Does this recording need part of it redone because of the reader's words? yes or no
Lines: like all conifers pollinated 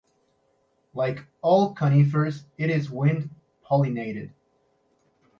yes